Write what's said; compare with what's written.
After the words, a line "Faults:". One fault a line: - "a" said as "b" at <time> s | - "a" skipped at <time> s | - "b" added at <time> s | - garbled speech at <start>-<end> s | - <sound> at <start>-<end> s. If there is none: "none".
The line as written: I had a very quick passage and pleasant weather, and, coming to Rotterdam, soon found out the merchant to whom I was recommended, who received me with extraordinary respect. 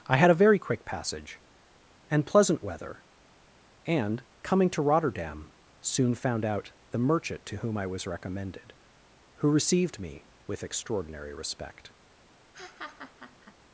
I had a very quick passage and pleasant weather, and, coming to Rotterdam, soon found out the merchant to whom I was recommended, who received me with extraordinary respect.
Faults:
- laugh at 12.5-13.5 s